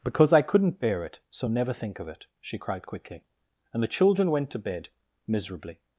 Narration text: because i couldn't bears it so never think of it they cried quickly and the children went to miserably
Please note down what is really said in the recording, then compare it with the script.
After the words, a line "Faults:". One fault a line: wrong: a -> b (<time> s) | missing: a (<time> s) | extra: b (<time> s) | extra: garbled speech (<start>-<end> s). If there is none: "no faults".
because i couldn't bear it so never think of it she cried quickly and the children went to bed miserably
Faults:
wrong: bears -> bear (0.8 s)
wrong: they -> she (2.4 s)
extra: bed (4.6 s)